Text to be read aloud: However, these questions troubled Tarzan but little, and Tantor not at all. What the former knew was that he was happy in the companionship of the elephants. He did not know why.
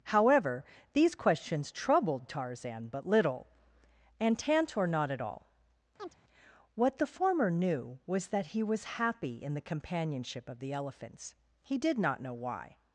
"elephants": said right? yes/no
yes